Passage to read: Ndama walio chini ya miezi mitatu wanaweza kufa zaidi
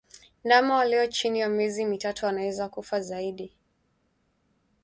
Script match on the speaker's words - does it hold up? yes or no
yes